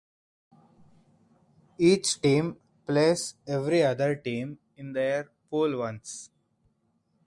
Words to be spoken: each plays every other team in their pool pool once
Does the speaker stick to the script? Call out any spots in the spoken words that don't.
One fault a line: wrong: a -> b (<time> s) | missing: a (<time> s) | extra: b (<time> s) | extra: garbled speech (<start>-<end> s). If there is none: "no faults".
extra: team (2.2 s)
missing: pool (5.8 s)